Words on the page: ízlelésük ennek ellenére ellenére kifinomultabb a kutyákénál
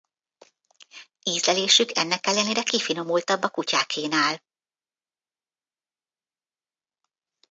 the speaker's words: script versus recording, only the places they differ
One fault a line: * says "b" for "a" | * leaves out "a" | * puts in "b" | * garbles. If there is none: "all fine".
* leaves out "ellenére"